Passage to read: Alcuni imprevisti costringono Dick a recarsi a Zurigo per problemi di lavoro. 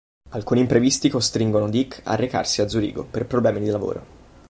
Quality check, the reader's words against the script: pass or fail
pass